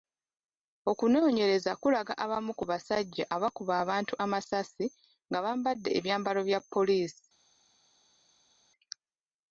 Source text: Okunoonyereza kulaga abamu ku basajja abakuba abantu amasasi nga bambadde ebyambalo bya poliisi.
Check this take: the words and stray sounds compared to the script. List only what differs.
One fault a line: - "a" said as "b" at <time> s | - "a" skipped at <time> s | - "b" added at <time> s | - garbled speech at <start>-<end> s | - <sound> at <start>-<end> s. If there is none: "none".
none